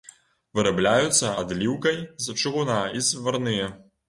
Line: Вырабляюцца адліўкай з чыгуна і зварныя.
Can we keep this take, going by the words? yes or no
yes